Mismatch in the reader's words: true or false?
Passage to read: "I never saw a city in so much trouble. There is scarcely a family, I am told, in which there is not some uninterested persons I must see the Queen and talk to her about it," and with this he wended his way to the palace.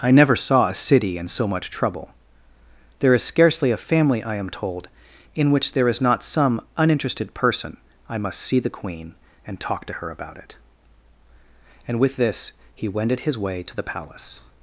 true